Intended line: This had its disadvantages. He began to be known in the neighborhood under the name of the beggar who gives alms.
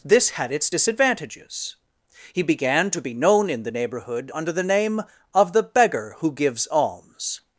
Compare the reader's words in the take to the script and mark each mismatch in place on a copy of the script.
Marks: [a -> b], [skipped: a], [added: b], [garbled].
This had its disadvantages. He began to be known in the neighborhood under the name of the beggar who gives alms.